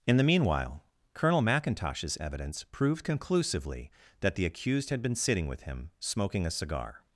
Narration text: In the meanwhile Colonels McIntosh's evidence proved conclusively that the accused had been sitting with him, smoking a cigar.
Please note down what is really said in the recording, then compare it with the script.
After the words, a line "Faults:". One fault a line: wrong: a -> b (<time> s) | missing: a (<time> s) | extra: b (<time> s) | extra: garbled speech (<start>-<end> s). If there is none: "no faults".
In the meanwhile Colonel McIntosh's evidence proved conclusively that the accused had been sitting with him, smoking a cigar.
Faults:
wrong: Colonels -> Colonel (1.1 s)